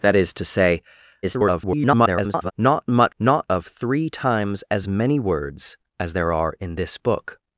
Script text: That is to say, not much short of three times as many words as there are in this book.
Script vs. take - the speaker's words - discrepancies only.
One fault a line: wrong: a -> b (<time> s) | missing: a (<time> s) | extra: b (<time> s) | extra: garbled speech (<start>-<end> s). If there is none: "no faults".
extra: garbled speech (1.2-2.5 s)
wrong: short -> not (3.2 s)